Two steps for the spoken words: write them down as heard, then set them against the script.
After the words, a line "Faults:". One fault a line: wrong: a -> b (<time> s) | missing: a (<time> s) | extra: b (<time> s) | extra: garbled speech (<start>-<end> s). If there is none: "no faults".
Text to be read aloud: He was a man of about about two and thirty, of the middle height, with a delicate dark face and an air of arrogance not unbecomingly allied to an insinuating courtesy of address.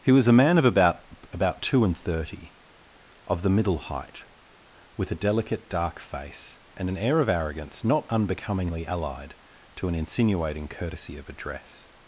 He was a man of about about two and thirty, of the middle height, with a delicate dark face and an air of arrogance not unbecomingly allied to an insinuating courtesy of address.
Faults:
no faults